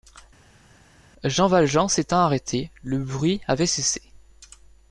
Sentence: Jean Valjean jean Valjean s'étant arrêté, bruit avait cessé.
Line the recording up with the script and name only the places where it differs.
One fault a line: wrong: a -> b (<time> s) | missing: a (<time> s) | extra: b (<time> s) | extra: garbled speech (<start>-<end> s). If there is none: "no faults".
missing: jean Valjean (1.9 s)
extra: le (2.8 s)